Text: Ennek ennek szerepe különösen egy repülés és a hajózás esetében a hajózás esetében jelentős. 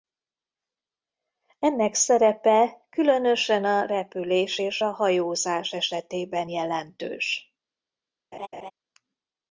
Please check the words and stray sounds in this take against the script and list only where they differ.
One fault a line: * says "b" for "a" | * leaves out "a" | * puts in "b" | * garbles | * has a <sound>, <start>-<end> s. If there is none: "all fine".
* leaves out "ennek"
* says "a" for "egy"
* leaves out "a hajózás esetében"
* has a laugh, 8.3-8.7 s